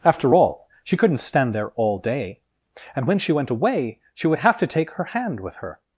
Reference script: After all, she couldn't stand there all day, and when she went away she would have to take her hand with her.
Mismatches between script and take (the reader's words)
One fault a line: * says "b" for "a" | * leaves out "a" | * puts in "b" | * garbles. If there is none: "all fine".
all fine